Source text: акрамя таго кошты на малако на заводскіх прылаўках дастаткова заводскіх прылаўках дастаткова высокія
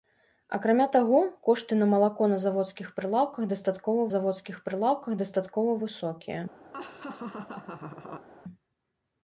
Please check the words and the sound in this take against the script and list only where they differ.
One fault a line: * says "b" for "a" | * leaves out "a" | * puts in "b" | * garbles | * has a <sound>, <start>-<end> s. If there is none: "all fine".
* has a laugh, 6.7-8.3 s